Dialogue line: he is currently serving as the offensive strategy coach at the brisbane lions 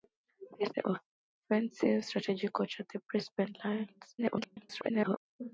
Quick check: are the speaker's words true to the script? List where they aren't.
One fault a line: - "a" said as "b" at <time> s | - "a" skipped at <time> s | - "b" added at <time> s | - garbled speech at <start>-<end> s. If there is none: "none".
- "currently serving as" skipped at 0.7 s
- garbled speech at 4.2-5.2 s